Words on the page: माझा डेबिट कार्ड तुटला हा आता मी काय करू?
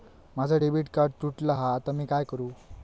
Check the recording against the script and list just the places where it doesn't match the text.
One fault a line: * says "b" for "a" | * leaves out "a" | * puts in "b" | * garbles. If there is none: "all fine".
all fine